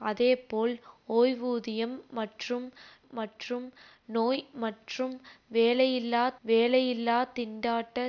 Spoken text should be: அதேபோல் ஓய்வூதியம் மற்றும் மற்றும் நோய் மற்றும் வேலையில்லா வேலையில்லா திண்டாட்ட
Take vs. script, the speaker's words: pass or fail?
pass